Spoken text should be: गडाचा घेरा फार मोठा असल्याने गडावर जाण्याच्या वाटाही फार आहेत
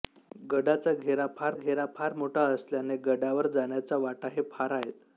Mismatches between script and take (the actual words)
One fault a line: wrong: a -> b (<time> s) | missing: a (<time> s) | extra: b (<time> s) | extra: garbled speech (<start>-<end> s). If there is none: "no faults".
extra: घेरा फार (1.5 s)